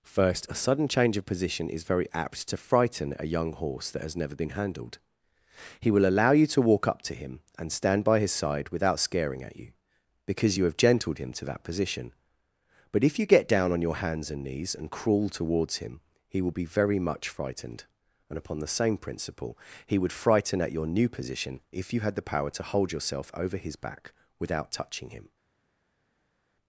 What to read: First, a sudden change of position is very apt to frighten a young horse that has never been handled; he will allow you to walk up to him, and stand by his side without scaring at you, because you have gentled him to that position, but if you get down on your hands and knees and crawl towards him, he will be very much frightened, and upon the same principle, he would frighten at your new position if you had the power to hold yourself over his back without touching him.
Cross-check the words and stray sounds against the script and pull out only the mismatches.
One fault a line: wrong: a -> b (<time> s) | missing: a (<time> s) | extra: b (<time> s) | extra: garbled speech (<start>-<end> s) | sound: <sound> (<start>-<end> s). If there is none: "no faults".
no faults